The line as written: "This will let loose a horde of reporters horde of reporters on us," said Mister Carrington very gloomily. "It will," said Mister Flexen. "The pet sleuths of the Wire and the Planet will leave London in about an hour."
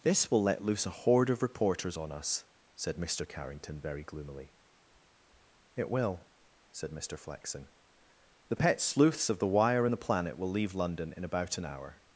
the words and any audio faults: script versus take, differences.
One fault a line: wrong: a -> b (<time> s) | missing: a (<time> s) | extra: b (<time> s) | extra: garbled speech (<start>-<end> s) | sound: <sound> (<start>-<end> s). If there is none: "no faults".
missing: horde of reporters (1.9 s)